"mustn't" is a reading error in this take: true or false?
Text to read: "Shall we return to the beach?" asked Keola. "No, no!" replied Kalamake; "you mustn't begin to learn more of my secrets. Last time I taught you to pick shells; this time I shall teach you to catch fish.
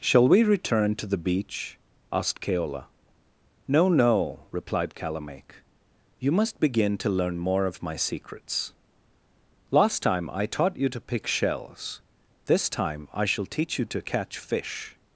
true